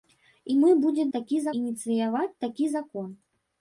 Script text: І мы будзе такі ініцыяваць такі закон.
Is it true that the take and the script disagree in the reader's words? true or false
false